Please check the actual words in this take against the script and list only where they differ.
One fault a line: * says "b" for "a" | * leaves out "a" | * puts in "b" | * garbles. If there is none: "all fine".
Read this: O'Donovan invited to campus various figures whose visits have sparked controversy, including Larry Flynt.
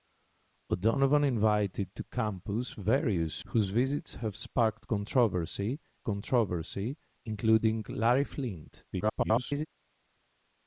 * leaves out "figures"
* puts in "controversy"
* garbles